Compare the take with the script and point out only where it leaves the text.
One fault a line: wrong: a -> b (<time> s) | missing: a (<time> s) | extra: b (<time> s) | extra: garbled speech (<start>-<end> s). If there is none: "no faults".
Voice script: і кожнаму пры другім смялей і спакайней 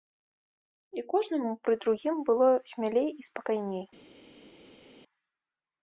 extra: было (2.3 s)